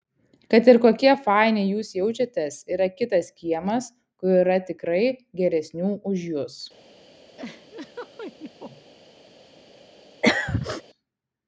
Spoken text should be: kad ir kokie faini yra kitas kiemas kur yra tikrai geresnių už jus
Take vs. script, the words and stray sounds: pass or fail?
fail